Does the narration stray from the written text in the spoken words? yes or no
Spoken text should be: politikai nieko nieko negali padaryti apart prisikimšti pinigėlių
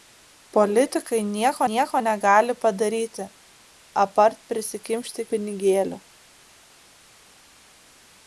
no